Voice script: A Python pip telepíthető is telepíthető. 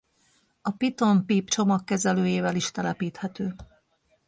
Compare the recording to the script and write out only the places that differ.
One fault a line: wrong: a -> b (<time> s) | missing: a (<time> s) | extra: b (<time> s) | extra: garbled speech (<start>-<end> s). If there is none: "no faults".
wrong: telepíthető -> csomagkezelőjével (1.5 s)